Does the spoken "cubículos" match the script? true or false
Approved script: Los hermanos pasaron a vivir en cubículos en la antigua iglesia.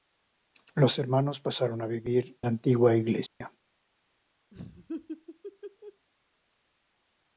false